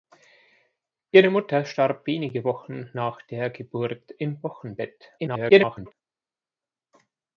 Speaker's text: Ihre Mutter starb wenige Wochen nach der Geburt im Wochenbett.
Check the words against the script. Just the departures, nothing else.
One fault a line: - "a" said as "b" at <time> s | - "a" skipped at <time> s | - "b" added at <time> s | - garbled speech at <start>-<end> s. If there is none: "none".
- garbled speech at 5.2-5.9 s